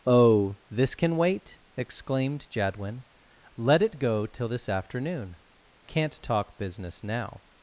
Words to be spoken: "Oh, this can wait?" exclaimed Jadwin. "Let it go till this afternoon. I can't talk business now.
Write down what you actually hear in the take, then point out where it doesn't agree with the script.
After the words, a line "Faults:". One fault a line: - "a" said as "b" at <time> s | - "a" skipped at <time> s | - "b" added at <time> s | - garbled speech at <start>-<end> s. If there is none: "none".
"Oh, this can wait?" exclaimed Jadwin. "Let it go till this afternoon. can't talk business now.
Faults:
- "I" skipped at 5.3 s